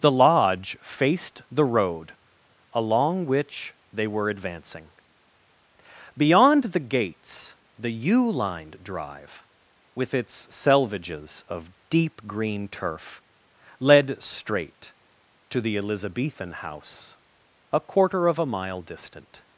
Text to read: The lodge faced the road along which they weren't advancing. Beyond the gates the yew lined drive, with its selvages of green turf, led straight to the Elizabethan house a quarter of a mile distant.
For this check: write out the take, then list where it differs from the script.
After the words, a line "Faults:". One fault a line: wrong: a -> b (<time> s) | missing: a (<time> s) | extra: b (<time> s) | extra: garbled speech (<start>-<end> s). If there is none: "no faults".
The lodge faced the road along which they were advancing. Beyond the gates the yew lined drive, with its selvages of deep green turf, led straight to the Elizabethan house a quarter of a mile distant.
Faults:
wrong: weren't -> were (4.1 s)
extra: deep (11.9 s)